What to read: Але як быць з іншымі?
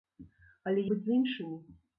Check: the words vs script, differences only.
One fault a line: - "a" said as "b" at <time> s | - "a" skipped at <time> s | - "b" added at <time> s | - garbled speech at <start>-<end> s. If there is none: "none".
- "як" skipped at 0.9 s